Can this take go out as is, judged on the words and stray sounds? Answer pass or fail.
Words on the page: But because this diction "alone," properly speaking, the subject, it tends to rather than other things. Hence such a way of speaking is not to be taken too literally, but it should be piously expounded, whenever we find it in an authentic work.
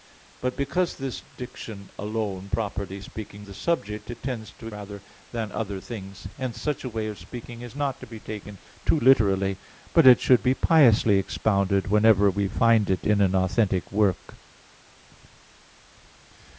pass